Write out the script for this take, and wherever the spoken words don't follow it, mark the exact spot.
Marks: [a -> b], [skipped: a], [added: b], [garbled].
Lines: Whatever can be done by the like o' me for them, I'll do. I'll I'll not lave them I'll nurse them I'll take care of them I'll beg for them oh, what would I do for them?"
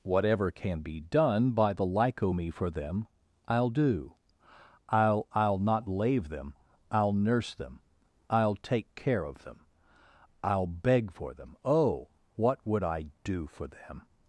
Whatever can be done by the like o' me for them, I'll do. I'll I'll not lave them I'll nurse them I'll take care of them I'll beg for them oh, what would I do for them?"